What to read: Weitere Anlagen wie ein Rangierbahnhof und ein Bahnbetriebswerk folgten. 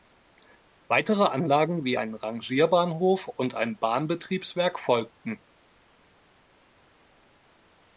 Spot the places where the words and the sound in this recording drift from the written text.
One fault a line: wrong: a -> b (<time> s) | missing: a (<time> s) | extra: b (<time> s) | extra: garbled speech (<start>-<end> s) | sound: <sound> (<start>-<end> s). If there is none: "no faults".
no faults